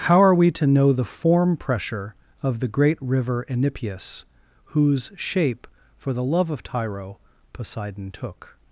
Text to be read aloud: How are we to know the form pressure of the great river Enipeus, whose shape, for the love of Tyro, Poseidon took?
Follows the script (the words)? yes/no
yes